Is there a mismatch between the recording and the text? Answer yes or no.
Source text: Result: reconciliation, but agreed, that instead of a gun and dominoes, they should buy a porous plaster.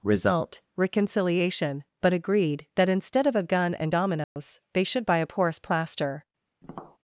no